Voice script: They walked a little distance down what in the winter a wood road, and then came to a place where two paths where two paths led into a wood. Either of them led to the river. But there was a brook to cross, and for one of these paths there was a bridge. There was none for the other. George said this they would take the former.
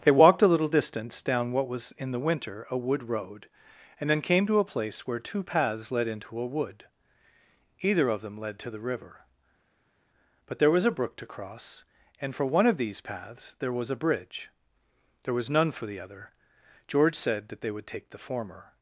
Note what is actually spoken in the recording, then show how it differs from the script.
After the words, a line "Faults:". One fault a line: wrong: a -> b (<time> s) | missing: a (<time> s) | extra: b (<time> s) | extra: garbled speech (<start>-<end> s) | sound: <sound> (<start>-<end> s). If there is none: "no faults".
They walked a little distance down what was in the winter a wood road, and then came to a place where two paths led into a wood. Either of them led to the river. But there was a brook to cross, and for one of these paths there was a bridge. There was none for the other. George said that they would take the former.
Faults:
extra: was (1.7 s)
missing: where two paths (5.9 s)
wrong: this -> that (17.5 s)